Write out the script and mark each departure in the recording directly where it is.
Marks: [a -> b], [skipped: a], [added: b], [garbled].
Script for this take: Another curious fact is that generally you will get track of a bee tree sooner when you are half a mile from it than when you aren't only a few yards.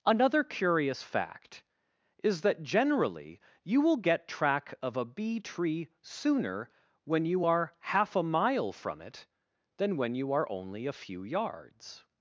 Another curious fact is that generally you will get track of a bee tree sooner when you are half a mile from it than when you [aren't -> are] only a few yards.